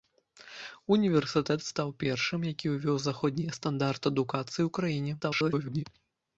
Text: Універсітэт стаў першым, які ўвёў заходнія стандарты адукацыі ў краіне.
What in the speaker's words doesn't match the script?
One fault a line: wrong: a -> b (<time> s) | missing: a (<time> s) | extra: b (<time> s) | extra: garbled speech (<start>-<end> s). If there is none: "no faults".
extra: garbled speech (5.2-5.9 s)